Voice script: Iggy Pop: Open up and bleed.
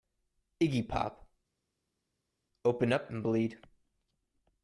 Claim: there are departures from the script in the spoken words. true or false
false